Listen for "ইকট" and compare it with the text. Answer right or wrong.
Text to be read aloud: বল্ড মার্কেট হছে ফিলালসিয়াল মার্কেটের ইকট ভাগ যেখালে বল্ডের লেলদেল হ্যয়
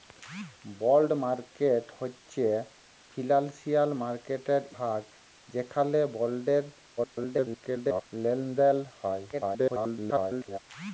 wrong